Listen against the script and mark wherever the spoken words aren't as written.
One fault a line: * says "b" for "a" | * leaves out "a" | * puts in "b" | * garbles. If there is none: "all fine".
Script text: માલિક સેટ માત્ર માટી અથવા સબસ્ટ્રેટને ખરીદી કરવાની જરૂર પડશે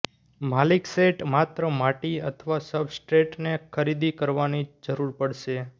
all fine